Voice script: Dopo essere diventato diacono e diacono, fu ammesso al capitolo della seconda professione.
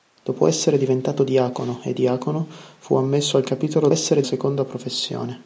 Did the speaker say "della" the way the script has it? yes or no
no